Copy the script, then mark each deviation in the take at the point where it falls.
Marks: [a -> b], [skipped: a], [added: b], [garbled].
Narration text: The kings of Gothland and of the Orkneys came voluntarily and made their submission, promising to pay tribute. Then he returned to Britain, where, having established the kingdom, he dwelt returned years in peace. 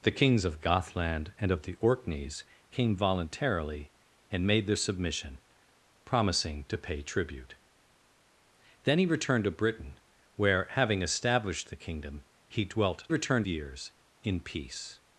The kings of Gothland and of the Orkneys came voluntarily and made their submission, promising to pay tribute. Then he returned to Britain, where, having established the kingdom, he dwelt returned years in peace.